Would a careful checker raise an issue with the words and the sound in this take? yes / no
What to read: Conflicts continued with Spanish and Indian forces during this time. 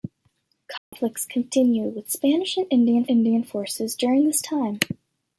yes